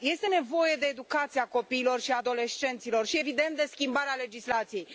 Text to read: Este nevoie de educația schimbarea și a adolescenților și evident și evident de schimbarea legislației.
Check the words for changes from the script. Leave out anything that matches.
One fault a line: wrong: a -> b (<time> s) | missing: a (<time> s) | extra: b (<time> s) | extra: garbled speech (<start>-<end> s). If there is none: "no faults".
wrong: schimbarea -> copiilor (1.5 s)
missing: și evident (3.5 s)